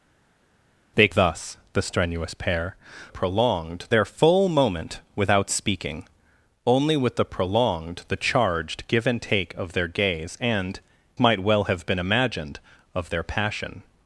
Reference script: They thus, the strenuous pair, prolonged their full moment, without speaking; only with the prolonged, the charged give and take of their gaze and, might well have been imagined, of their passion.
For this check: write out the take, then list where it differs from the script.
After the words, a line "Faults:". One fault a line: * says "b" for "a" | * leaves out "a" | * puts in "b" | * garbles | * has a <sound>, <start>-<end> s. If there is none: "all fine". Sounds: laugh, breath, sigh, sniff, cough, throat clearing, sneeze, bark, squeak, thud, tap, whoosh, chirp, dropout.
They thus, the strenuous pair, prolonged their full moment, without speaking; only with the prolonged, the charged give and take of their gaze and, might well have been imagined, of their passion.
Faults:
all fine